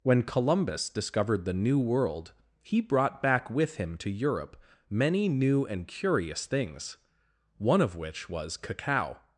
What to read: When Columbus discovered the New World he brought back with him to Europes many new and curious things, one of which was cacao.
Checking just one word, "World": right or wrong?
right